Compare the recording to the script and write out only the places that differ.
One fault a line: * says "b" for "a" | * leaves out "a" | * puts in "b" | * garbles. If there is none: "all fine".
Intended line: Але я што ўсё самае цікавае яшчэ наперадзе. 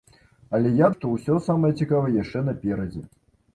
all fine